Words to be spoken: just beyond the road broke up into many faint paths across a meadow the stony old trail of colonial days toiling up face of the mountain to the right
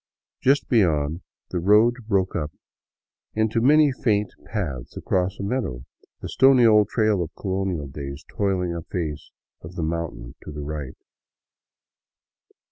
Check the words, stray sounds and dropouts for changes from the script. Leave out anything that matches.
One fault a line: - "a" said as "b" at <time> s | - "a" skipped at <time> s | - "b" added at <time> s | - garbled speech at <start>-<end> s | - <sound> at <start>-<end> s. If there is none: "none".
none